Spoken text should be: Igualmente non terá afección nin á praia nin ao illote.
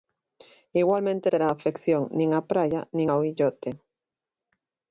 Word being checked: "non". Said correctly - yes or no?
no